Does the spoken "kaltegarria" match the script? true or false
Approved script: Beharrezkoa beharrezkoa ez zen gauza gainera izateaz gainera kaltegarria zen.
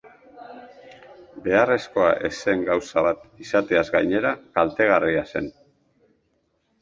true